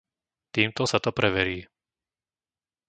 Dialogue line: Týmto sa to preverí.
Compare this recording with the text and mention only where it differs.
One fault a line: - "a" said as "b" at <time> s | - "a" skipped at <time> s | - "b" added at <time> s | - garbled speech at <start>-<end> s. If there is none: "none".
none